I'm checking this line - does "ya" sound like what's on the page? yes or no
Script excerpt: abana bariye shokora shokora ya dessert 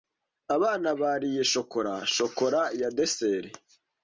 yes